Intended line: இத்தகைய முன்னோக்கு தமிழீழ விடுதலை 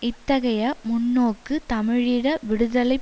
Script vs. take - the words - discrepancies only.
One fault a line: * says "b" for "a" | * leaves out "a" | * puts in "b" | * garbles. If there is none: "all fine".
all fine